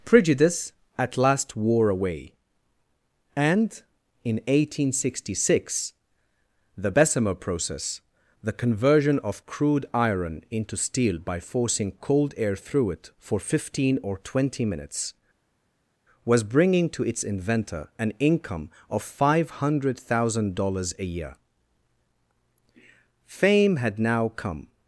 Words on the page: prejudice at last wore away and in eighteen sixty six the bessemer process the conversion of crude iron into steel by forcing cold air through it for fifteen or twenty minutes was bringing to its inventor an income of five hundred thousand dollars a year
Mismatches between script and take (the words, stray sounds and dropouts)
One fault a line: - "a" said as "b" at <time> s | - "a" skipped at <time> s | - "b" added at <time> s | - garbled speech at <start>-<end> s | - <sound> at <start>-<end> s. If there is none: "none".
- "fame had now come" added at 23.4 s